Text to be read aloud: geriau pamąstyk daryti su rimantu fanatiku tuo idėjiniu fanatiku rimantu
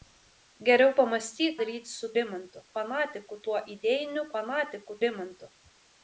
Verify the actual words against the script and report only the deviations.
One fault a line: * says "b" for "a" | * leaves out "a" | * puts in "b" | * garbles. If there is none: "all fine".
all fine